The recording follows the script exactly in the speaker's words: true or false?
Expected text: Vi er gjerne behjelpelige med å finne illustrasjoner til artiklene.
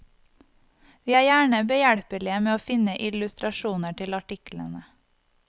true